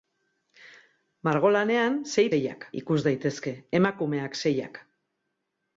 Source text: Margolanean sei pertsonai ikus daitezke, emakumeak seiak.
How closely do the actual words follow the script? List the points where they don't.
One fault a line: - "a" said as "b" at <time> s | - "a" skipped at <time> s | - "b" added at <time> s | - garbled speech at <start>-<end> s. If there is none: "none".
- "pertsonai" said as "seiak" at 2.3 s